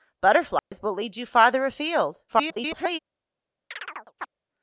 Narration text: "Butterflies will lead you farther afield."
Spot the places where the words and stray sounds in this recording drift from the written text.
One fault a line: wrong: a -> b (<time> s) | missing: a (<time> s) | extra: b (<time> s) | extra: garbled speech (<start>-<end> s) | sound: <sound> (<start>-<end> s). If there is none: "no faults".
sound: dropout (0.6-0.7 s)
extra: garbled speech (2.3-3.0 s)
sound: chirp (3.7-4.3 s)